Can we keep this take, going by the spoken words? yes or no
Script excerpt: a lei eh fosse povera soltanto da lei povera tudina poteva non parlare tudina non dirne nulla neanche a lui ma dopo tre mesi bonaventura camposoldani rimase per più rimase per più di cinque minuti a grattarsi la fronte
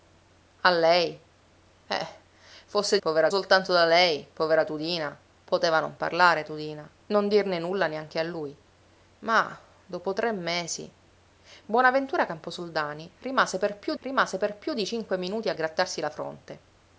yes